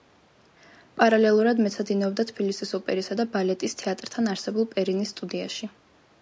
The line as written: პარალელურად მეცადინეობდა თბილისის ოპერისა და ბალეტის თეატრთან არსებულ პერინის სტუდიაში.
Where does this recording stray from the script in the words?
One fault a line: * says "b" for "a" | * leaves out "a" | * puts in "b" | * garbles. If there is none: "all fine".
all fine